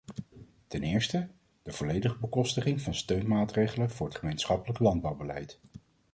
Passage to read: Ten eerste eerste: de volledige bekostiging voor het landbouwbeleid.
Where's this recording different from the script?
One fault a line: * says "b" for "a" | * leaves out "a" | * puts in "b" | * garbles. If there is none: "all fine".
* leaves out "eerste"
* puts in "van steunmaatregelen"
* puts in "gemeenschappelijk"